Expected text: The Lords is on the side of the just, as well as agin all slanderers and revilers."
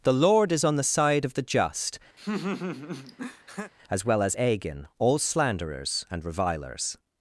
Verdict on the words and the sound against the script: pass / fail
fail